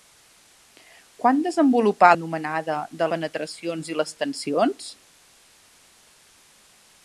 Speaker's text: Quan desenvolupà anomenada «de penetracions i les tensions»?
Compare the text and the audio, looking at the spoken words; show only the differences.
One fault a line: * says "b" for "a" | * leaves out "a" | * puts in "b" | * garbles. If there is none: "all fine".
all fine